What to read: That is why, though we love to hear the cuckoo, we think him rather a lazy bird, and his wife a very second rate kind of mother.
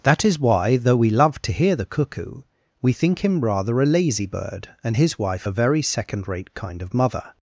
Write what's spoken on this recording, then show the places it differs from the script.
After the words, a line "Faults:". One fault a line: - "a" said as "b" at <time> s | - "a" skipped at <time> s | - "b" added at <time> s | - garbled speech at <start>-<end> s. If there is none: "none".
That is why, though we love to hear the cuckoo, we think him rather a lazy bird, and his wife a very second rate kind of mother.
Faults:
none